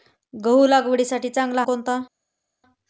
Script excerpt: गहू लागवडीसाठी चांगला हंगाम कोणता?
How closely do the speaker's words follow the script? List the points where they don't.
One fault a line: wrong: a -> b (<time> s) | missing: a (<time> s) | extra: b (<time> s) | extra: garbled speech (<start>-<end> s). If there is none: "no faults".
missing: हंगाम (1.6 s)